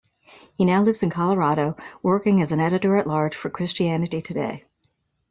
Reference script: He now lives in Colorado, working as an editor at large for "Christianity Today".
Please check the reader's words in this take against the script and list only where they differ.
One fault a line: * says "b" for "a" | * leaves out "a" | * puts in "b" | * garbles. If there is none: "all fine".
all fine